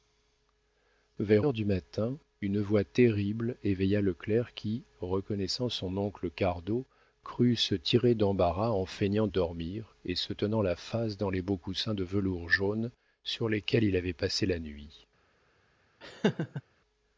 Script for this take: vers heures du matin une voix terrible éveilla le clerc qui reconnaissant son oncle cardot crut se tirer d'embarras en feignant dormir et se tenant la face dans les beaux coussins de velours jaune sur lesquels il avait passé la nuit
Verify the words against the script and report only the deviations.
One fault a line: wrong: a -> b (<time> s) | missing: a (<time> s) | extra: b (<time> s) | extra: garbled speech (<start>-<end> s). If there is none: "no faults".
no faults